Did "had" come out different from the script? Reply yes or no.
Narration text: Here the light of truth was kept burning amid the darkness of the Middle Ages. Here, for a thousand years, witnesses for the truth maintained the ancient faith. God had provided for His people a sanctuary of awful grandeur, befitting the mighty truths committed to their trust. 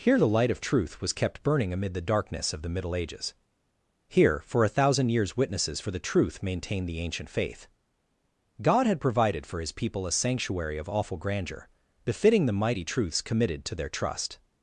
no